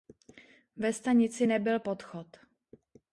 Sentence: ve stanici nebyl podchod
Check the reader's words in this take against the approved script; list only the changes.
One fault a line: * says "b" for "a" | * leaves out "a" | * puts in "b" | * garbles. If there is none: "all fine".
all fine